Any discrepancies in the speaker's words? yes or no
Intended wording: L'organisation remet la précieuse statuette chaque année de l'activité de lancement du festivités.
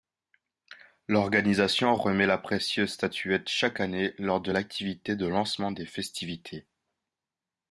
yes